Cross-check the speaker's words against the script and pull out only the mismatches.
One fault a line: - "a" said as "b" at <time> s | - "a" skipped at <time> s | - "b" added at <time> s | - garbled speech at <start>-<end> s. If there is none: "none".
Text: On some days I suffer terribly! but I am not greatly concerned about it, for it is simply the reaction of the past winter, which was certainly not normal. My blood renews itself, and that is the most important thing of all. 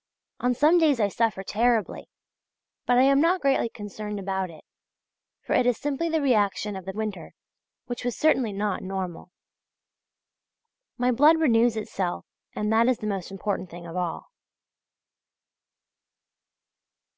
- "past" skipped at 6.9 s